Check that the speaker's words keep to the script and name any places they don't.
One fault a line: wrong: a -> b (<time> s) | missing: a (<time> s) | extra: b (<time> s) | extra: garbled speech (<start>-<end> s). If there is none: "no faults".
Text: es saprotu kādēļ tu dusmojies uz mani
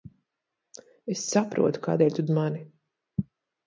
missing: dusmojies (2.3 s)